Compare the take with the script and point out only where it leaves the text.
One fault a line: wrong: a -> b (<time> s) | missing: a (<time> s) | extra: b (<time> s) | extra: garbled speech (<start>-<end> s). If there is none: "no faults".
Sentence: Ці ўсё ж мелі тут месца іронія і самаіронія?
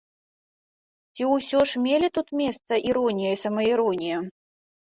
no faults